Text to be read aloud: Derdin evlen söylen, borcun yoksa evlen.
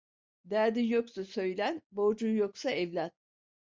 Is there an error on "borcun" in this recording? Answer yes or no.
no